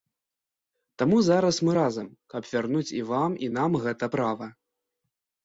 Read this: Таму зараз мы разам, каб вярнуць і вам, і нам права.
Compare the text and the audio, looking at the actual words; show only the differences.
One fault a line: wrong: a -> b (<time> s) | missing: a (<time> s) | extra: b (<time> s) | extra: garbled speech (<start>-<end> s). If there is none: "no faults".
extra: гэта (3.9 s)